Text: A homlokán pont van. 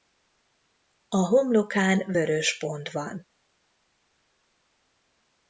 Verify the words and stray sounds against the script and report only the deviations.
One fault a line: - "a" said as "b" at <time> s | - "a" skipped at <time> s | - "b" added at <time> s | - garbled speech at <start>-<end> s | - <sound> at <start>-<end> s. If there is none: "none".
- "vörös" added at 2.1 s